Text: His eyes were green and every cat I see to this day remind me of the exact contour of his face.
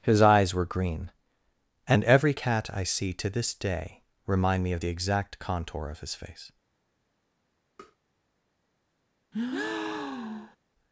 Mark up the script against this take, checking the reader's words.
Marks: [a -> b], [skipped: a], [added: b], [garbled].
His eyes were green and every cat I see to this day remind me of the exact contour of his face.